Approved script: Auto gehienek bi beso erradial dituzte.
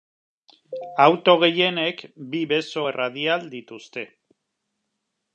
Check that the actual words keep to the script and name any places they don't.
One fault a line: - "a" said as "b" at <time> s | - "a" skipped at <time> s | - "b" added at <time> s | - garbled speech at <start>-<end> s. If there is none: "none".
none